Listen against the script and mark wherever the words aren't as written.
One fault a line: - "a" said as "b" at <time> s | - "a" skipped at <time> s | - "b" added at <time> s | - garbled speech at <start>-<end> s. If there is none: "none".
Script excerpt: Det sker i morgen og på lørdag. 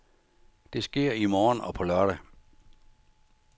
none